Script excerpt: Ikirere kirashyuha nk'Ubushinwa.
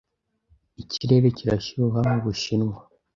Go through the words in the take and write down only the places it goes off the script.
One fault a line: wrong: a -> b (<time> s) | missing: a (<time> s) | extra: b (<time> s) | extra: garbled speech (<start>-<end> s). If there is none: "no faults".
no faults